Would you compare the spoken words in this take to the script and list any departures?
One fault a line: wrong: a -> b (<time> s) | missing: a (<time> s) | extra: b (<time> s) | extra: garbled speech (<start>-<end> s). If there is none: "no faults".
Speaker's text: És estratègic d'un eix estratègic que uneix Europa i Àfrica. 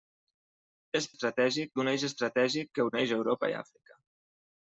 no faults